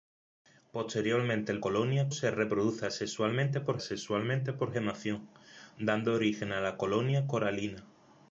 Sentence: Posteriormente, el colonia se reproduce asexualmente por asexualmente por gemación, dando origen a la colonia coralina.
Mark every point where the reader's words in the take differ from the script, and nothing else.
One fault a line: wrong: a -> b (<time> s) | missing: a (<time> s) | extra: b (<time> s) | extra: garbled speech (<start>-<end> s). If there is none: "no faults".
no faults